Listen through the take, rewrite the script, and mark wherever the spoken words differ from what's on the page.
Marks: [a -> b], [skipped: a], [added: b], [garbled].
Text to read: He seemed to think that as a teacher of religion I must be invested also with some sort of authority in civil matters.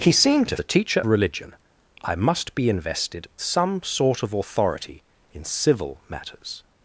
He seemed to [skipped: think that as] a teacher [skipped: of] religion I must be invested [skipped: also with] some sort of authority in civil matters.